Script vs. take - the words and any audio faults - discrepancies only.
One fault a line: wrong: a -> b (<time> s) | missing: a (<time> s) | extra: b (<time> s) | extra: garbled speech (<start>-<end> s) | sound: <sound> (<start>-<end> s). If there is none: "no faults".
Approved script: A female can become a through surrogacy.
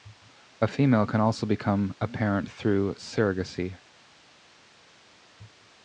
extra: also (1.2 s)
extra: parent (2.1 s)